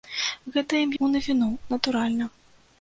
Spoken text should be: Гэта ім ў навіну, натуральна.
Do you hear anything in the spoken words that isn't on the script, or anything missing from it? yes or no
no